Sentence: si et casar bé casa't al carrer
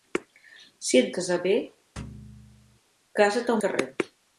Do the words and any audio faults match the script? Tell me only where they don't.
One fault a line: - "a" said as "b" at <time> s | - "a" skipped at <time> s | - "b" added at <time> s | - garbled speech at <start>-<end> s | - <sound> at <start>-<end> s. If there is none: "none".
- thud at 2.0-2.8 s